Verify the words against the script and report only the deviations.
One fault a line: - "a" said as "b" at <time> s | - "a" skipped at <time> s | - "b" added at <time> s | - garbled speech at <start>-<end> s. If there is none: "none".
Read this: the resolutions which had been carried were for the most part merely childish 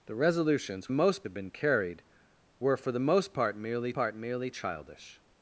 - "which" said as "most" at 0.9 s
- "part merely" added at 3.9 s